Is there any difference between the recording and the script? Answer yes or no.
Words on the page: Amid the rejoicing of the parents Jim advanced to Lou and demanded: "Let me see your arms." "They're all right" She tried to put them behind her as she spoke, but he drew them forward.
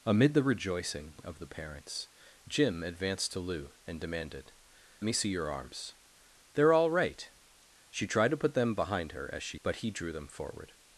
yes